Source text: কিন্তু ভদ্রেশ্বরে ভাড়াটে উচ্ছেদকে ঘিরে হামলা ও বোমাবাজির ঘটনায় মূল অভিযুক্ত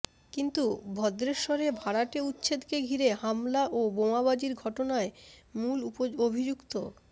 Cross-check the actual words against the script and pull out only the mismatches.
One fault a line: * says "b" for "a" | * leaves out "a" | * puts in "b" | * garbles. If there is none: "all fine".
all fine